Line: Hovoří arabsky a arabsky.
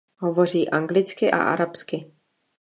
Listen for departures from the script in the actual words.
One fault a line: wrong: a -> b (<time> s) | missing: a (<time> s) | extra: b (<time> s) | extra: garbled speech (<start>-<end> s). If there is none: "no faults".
wrong: arabsky -> anglicky (0.7 s)